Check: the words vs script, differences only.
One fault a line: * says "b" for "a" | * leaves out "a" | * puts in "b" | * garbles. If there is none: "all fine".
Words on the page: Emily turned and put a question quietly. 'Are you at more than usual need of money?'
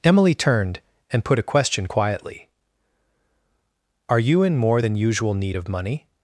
* says "in" for "at"